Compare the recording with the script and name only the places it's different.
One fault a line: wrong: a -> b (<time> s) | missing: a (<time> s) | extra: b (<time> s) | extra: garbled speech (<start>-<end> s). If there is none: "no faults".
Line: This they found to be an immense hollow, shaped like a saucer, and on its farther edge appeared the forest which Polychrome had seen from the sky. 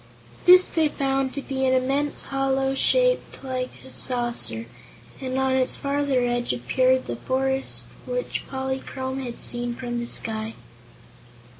no faults